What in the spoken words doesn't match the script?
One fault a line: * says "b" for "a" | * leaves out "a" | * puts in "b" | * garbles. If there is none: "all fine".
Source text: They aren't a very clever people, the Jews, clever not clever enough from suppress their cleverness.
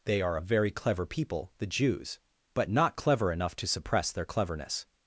* says "are" for "aren't"
* says "but" for "clever"
* says "to" for "from"